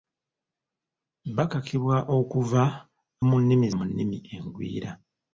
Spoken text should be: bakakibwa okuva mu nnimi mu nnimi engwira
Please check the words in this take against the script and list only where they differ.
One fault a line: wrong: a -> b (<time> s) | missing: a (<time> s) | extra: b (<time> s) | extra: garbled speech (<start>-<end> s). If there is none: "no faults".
no faults